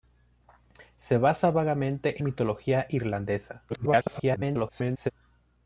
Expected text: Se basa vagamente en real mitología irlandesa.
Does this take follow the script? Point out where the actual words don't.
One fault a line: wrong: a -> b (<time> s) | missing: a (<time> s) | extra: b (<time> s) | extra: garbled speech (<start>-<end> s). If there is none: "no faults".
missing: en real (2.2 s)
extra: garbled speech (3.7-5.1 s)